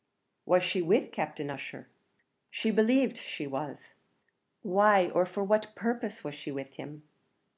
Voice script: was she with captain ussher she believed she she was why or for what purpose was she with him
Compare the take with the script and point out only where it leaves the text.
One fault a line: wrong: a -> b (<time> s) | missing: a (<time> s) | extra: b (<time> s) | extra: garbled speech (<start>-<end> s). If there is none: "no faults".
missing: she (3.4 s)